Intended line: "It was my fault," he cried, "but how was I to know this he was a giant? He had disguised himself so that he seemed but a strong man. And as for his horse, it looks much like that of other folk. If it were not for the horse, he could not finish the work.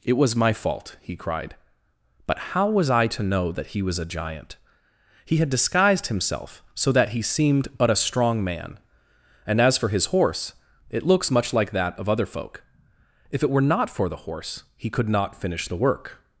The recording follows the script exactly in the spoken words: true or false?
false